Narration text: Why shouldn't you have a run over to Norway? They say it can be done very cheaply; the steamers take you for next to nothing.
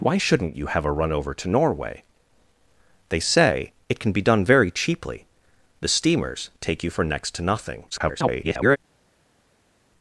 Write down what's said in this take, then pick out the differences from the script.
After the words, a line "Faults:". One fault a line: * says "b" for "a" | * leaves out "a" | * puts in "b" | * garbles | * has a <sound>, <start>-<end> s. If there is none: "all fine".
Why shouldn't you have a run over to Norway? They say it can be done very cheaply; the steamers take you for next to nothing. [garbled]
Faults:
* garbles